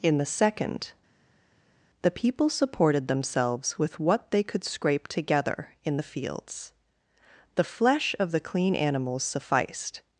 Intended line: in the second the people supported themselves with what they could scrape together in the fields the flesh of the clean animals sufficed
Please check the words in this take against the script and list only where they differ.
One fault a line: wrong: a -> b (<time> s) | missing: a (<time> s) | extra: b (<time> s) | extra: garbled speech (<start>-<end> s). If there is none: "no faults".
no faults